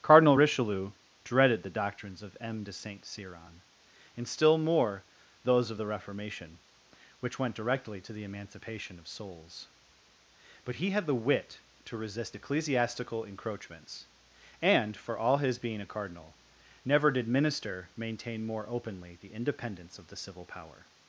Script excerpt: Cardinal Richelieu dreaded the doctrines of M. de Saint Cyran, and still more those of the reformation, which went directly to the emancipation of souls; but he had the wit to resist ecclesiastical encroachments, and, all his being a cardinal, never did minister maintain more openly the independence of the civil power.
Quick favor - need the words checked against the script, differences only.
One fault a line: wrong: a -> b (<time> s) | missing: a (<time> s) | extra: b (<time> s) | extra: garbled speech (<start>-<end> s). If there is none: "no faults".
extra: for (15.0 s)